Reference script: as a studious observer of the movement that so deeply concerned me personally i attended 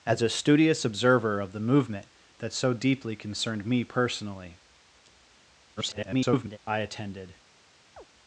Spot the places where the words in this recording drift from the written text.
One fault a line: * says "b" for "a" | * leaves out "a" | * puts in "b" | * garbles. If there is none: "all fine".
* garbles